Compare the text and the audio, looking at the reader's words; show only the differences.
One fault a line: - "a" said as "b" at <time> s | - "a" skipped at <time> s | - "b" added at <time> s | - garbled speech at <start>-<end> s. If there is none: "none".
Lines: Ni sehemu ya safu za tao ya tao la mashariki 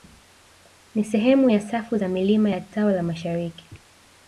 - "tao" said as "milima" at 2.1 s